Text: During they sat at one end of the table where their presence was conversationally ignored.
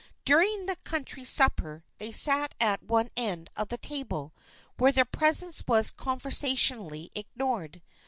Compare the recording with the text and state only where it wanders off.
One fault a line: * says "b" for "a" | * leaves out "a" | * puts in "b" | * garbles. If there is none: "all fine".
* puts in "the country supper"